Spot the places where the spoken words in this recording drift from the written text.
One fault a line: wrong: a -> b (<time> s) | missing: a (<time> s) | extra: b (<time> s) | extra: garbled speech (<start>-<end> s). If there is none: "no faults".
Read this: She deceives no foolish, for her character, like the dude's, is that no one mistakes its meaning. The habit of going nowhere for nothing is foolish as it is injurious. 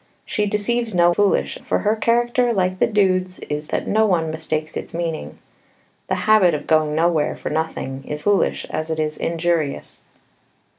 no faults